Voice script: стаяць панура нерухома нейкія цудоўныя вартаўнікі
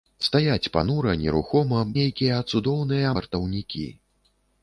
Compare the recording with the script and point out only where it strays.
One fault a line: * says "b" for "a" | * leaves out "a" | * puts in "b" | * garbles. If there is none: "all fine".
all fine